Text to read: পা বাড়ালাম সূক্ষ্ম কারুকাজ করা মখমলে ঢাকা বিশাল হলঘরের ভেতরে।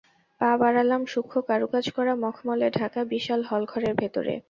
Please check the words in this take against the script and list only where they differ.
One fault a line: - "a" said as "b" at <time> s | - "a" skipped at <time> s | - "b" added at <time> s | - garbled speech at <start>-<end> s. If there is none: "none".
none